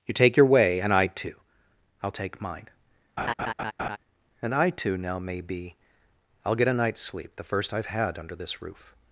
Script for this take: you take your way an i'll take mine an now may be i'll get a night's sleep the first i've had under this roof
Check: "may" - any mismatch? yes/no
no